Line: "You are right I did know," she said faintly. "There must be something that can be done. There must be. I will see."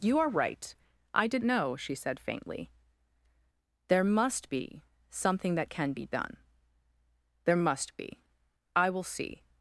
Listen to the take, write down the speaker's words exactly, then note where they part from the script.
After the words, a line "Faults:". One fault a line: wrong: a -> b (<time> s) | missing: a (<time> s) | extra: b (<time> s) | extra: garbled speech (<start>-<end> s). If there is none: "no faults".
"You are right I did know," she said faintly. "There must be something that can be done. There must be. I will see."
Faults:
no faults